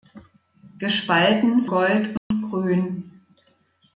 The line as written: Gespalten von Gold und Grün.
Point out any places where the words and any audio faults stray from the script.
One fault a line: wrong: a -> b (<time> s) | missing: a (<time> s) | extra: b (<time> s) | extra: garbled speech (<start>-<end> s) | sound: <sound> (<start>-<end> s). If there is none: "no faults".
missing: von (1.6 s)
sound: dropout (2.2-2.3 s)